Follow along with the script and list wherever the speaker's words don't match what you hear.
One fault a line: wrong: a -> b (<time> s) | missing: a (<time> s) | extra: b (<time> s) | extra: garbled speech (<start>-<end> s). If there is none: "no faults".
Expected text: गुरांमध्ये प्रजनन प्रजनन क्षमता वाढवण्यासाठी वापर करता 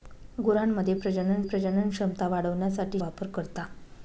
no faults